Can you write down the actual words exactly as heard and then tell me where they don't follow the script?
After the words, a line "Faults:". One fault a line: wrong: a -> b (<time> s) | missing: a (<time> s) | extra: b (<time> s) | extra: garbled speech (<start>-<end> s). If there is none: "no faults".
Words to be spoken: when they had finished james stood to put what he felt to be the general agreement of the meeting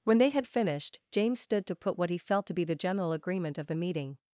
when they had finished james stood to put what he felt to be the general agreement of the meeting
Faults:
no faults